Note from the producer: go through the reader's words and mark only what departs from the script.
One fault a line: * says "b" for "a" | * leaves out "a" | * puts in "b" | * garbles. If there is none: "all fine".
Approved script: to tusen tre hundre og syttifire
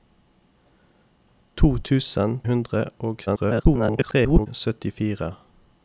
* leaves out "tre"
* garbles